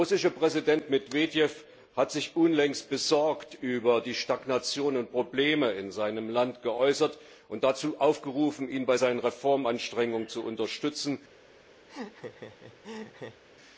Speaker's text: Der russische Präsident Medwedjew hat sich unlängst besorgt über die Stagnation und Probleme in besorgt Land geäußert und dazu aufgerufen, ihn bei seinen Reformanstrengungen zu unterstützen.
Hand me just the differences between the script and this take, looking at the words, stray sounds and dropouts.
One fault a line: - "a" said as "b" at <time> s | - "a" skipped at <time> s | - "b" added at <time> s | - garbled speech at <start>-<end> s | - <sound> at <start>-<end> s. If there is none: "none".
- "besorgt" said as "seinem" at 5.9 s
- laugh at 11.9-13.4 s